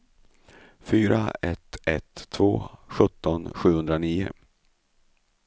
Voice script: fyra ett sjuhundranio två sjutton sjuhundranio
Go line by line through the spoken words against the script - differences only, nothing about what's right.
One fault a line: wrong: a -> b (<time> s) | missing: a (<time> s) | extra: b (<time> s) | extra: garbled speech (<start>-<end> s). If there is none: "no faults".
wrong: sjuhundranio -> ett (1.9 s)